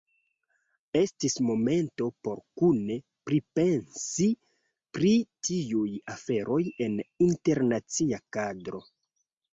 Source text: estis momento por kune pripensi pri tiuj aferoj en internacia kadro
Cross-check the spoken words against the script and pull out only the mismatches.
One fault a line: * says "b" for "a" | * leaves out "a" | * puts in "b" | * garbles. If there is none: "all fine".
all fine